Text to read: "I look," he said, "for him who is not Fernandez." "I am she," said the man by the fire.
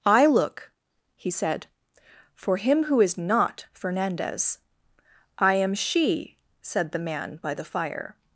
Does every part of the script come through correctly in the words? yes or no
yes